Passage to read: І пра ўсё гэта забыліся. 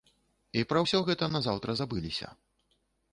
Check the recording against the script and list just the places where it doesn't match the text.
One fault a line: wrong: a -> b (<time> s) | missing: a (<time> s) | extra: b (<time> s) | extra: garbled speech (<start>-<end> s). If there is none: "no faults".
extra: назаўтра (1.4 s)